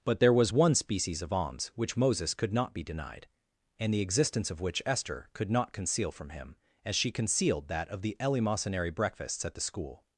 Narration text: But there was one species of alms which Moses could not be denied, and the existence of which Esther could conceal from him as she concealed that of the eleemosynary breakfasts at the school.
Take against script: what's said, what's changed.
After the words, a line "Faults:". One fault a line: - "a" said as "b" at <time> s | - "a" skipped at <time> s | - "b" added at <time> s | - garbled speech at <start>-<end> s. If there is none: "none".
But there was one species of alms which Moses could not be denied, and the existence of which Esther could not conceal from him as she concealed that of the eleemosynary breakfasts at the school.
Faults:
- "not" added at 5.5 s